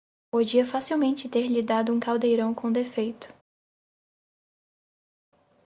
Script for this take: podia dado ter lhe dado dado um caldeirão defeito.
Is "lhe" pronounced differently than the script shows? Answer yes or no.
no